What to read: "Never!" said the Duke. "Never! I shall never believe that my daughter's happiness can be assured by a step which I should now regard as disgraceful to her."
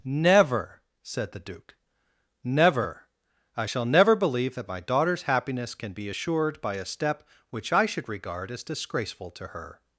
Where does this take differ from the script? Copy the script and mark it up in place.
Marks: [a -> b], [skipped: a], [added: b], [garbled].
"Never!" said the Duke. "Never! I shall never believe that my daughter's happiness can be assured by a step which I should [skipped: now] regard as disgraceful to her."